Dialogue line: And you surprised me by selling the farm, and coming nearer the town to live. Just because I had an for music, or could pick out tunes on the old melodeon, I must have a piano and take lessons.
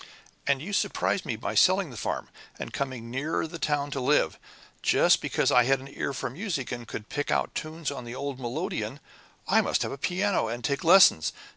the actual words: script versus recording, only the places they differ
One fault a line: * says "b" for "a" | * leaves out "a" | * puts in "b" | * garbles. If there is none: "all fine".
* puts in "ear"
* says "and" for "or"